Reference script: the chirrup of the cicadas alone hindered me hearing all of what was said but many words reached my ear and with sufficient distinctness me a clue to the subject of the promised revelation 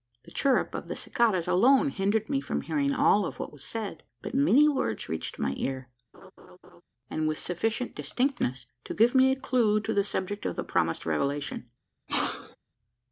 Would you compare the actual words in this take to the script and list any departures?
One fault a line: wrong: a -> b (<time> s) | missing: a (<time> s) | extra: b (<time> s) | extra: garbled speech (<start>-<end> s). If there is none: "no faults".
extra: from (2.4 s)
extra: to give (8.9 s)